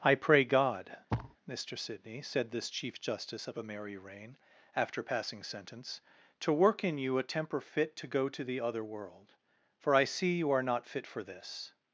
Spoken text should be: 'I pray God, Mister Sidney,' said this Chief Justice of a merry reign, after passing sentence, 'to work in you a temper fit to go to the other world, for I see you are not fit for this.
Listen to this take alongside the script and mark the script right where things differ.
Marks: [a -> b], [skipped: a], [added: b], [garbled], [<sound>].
'I pray God, [thud] Mister Sidney,' said this Chief Justice of a merry reign, after passing sentence, 'to work in you a temper fit to go to the other world, for I see you are not fit for this.